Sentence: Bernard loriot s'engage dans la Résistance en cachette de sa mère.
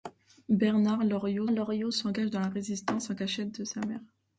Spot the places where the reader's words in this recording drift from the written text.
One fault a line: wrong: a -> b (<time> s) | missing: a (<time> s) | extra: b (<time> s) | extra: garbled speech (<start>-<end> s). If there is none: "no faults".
extra: loriot (1.5 s)